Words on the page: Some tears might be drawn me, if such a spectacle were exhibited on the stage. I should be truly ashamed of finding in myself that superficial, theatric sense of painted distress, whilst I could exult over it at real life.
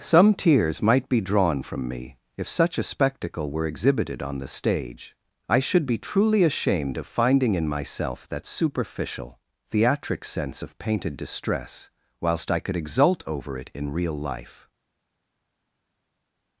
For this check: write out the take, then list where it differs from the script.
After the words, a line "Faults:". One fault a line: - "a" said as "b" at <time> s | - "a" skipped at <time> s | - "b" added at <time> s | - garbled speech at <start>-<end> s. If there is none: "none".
Some tears might be drawn from me, if such a spectacle were exhibited on the stage. I should be truly ashamed of finding in myself that superficial, theatric sense of painted distress, whilst I could exult over it in real life.
Faults:
- "from" added at 1.6 s
- "at" said as "in" at 13.7 s